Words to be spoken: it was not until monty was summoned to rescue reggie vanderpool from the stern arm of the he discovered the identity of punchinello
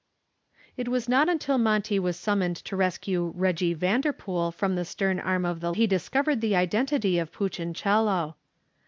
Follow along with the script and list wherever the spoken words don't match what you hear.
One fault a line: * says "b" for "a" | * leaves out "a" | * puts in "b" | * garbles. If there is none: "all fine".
all fine